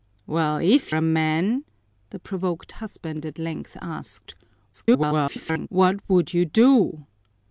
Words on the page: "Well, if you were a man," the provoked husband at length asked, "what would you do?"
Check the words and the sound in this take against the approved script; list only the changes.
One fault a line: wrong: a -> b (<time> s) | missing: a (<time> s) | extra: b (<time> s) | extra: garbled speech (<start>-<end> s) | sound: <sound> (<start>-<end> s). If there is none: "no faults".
missing: you were (0.9 s)
extra: garbled speech (4.7-5.7 s)